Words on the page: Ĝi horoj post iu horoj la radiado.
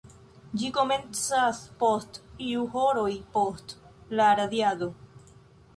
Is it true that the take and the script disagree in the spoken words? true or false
true